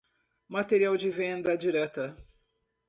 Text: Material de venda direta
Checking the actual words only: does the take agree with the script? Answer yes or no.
yes